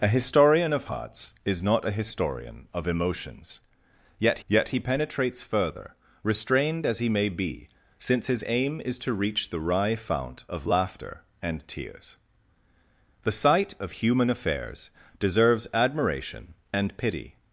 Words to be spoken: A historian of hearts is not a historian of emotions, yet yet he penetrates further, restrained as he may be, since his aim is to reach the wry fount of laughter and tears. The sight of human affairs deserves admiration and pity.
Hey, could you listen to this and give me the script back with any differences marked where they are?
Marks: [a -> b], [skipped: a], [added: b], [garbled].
A historian of hearts is not a historian of emotions, yet yet he penetrates further, restrained as he may be, since his aim is to reach the wry fount of laughter and tears. The sight of human affairs deserves admiration and pity.